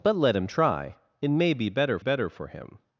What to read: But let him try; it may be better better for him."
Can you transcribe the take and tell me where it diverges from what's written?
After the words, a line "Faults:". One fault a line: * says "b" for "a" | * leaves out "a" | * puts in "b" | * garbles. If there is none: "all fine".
But let him try; it may be better better for him."
Faults:
all fine